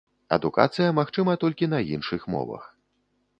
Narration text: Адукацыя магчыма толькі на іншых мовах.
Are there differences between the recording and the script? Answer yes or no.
no